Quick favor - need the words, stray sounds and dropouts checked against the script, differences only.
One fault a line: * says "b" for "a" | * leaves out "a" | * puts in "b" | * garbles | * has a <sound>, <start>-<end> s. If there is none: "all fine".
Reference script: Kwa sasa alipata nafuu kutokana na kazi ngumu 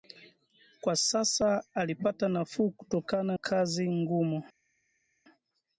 * leaves out "na"